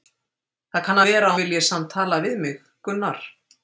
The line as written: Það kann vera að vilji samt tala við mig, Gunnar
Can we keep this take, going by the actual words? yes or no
yes